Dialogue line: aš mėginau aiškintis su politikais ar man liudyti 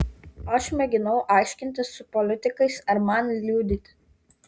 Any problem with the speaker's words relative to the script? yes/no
no